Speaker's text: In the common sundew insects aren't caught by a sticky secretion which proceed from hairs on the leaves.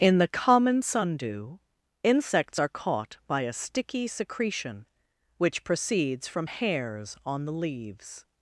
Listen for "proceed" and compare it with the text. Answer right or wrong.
wrong